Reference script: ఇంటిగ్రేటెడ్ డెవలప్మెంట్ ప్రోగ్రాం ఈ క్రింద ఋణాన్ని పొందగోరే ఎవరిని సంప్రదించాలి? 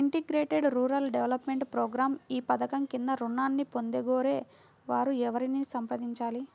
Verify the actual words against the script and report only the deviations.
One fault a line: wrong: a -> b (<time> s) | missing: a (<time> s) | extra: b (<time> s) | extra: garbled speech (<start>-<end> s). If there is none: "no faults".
extra: రూరల్ (0.8 s)
extra: పధకం (2.5 s)
extra: వారు (4.9 s)